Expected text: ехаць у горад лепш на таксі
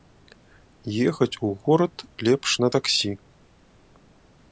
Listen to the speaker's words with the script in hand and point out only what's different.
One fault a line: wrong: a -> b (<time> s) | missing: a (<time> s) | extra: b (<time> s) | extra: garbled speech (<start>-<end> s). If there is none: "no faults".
no faults